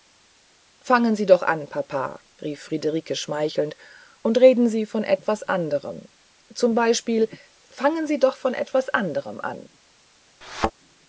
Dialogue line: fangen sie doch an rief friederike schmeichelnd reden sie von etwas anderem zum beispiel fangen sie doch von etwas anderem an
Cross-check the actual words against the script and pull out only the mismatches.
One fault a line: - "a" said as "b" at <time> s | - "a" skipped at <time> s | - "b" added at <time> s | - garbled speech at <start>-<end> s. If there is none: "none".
- "papa" added at 1.7 s
- "und" added at 4.2 s